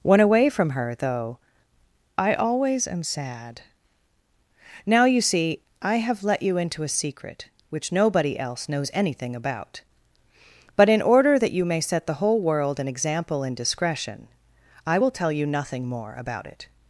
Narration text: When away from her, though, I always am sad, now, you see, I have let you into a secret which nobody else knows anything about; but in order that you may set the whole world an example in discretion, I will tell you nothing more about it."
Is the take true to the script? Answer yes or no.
yes